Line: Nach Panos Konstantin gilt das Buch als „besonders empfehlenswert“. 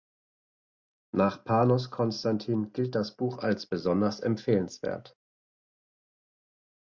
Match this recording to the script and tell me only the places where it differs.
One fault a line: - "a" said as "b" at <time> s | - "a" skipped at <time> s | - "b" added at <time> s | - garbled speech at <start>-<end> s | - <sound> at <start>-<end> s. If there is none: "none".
none